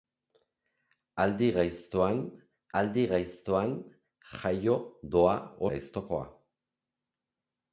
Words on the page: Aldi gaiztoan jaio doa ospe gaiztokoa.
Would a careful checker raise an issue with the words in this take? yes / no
yes